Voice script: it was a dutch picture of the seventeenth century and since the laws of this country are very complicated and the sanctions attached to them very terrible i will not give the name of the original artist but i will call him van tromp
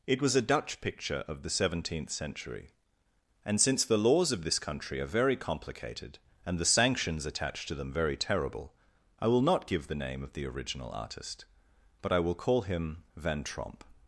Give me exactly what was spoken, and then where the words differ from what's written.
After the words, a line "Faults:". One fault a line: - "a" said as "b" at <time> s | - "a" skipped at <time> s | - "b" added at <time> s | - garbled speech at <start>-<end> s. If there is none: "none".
it was a dutch picture of the seventeenth century and since the laws of this country are very complicated and the sanctions attached to them very terrible i will not give the name of the original artist but i will call him van tromp
Faults:
none